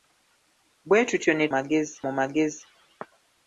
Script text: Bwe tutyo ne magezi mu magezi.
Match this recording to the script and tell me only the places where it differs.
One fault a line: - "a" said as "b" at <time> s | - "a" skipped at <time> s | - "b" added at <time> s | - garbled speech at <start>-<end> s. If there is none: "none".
none